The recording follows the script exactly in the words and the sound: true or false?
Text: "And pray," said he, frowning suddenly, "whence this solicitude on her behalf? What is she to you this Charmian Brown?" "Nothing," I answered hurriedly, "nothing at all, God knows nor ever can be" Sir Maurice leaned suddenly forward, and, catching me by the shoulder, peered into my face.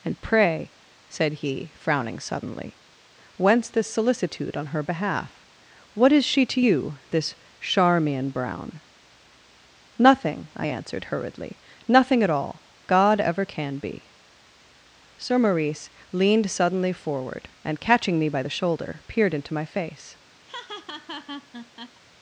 false